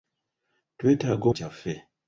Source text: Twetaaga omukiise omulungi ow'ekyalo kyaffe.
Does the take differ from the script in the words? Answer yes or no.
yes